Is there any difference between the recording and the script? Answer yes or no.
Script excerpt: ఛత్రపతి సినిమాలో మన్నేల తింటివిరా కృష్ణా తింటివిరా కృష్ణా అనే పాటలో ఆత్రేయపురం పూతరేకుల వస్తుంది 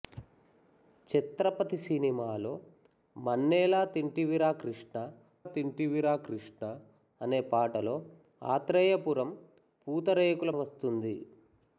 no